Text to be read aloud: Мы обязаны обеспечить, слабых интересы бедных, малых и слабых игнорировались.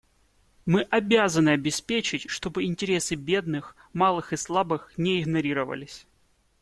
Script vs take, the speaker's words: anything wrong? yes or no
yes